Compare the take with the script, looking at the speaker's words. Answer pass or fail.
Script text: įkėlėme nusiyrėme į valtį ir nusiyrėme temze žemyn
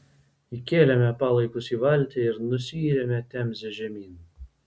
fail